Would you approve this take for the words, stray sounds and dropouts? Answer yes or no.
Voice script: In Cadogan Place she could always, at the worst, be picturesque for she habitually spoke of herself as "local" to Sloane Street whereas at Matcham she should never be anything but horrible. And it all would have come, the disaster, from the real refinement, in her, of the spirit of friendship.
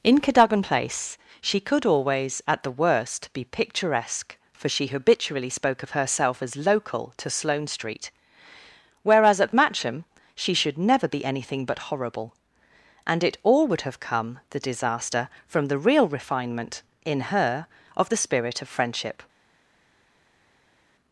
yes